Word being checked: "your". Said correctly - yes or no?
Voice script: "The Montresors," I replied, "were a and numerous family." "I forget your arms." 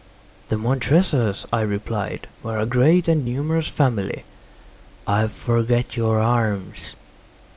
yes